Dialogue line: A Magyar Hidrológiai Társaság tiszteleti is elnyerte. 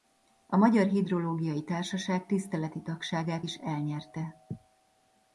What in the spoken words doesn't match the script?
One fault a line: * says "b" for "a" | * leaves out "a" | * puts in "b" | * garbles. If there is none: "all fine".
* puts in "tagságát"